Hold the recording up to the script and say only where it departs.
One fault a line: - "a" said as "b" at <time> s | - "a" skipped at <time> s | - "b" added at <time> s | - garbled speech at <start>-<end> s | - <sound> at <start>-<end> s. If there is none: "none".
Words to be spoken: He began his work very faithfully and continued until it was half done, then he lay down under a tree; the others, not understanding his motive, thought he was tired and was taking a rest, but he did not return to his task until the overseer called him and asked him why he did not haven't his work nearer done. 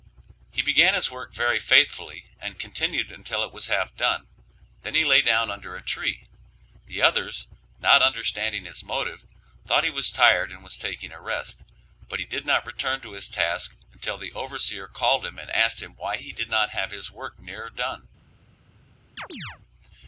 - "haven't" said as "have" at 16.7 s
- chirp at 19.2-19.6 s